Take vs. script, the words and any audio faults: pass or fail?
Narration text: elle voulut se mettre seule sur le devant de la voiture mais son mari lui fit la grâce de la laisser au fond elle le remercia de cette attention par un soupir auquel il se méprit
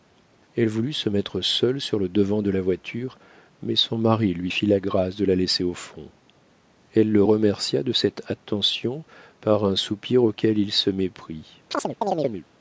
fail